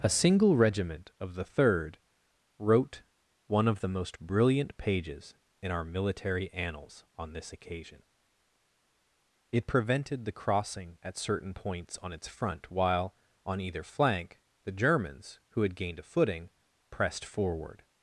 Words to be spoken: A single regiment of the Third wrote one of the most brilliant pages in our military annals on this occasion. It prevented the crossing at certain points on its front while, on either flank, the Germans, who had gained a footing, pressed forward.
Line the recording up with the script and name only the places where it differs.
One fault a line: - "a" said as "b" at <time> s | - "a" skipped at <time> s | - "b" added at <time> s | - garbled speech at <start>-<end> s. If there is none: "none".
none